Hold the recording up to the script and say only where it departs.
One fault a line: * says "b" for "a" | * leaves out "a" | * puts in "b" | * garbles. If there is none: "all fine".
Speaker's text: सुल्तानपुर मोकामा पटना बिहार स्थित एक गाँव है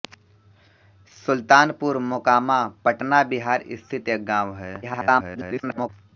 * garbles